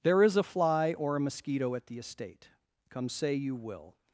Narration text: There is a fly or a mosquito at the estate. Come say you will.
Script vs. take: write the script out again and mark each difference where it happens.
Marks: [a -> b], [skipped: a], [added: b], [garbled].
There is a fly or a mosquito at the estate. Come say you will.